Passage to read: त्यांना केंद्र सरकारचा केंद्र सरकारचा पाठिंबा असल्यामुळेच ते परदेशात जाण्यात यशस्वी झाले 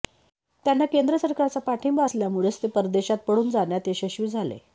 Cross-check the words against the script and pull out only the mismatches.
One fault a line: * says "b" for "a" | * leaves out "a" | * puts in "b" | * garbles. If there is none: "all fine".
* leaves out "केंद्र सरकारचा"
* puts in "पळून"